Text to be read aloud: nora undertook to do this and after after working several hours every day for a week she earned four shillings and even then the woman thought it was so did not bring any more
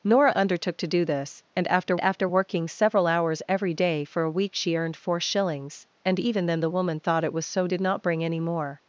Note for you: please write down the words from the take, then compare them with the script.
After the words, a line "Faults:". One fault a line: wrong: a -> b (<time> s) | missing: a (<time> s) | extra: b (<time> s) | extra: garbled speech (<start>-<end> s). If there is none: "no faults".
nora undertook to do this and after after working several hours every day for a week she earned four shillings and even then the woman thought it was so did not bring any more
Faults:
no faults